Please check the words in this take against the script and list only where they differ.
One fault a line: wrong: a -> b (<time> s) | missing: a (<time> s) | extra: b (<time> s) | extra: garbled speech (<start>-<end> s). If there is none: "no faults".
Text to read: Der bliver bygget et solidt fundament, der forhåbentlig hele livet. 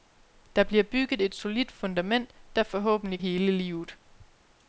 no faults